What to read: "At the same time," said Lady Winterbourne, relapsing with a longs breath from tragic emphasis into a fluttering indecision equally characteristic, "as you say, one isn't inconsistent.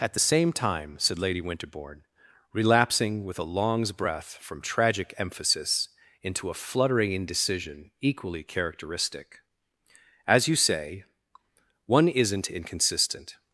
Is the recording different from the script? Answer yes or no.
no